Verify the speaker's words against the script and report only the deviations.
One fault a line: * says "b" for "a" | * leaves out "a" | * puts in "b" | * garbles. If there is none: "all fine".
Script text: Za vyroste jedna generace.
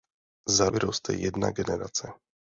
all fine